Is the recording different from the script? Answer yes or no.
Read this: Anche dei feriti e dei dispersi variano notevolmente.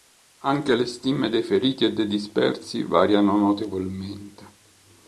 yes